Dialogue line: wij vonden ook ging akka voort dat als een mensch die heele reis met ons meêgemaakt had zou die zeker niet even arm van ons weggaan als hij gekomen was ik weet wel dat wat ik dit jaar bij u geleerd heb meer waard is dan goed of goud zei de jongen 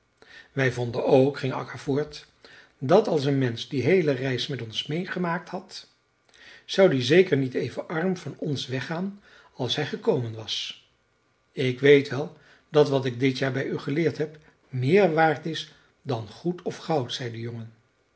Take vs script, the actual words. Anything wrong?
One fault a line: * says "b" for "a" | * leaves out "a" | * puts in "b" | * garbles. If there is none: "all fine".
all fine